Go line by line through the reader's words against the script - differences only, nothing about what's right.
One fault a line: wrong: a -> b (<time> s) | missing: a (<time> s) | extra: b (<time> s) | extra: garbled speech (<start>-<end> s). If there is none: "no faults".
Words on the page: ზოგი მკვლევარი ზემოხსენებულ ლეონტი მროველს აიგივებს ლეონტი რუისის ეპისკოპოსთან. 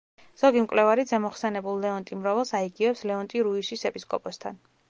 no faults